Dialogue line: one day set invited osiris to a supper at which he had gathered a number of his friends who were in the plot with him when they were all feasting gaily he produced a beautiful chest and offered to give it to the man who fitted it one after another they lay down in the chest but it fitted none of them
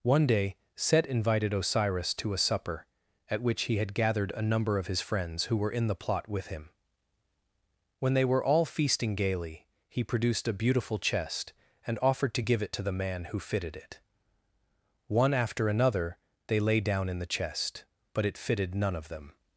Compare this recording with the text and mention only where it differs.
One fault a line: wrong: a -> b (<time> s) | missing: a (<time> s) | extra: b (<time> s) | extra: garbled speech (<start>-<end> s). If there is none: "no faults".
no faults